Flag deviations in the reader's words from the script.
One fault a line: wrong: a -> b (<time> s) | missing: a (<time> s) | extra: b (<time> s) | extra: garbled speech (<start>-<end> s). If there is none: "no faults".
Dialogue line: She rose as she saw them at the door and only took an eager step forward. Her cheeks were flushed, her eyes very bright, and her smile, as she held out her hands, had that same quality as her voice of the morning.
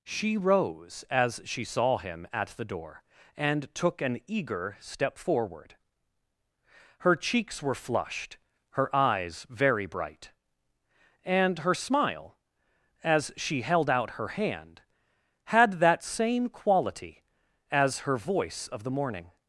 wrong: them -> him (2.0 s)
missing: only (3.7 s)
wrong: hands -> hand (14.3 s)